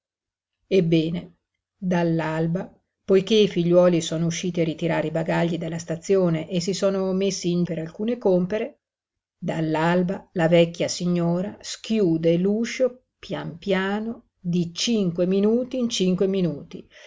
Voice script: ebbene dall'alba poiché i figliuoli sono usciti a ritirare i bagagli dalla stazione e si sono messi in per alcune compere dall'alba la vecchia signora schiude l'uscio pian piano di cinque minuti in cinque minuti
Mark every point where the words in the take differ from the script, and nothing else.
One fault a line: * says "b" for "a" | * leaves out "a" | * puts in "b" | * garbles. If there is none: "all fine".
all fine